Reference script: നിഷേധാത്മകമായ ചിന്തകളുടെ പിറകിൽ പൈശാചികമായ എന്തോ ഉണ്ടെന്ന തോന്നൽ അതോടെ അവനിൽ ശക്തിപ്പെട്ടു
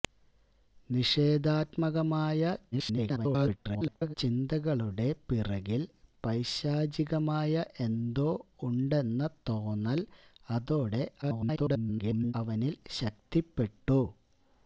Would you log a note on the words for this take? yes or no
yes